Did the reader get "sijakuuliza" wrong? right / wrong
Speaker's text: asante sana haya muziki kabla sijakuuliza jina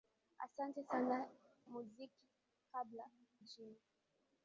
wrong